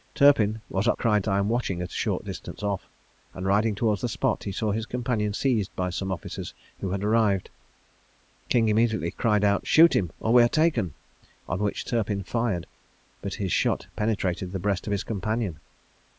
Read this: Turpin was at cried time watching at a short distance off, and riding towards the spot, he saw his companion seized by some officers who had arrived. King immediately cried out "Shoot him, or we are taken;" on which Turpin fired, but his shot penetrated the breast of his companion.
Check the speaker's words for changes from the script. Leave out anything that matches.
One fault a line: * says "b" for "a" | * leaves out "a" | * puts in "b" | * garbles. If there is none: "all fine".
all fine